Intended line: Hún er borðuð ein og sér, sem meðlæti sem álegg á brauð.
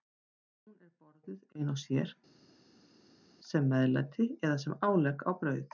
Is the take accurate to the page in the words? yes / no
no